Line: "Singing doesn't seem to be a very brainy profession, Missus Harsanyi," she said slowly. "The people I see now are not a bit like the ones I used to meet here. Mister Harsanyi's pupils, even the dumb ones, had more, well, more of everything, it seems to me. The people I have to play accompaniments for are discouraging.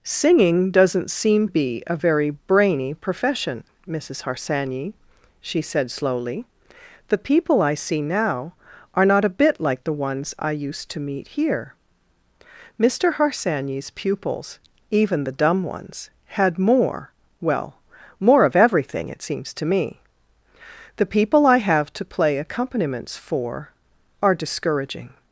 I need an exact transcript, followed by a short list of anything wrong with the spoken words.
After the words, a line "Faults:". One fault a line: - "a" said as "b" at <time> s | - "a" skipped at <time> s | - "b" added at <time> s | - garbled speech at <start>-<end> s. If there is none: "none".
"Singing doesn't seem be a very brainy profession, Missus Harsanyi," she said slowly. "The people I see now are not a bit like the ones I used to meet here. Mister Harsanyi's pupils, even the dumb ones, had more, well, more of everything, it seems to me. The people I have to play accompaniments for are discouraging.
Faults:
- "to" skipped at 1.5 s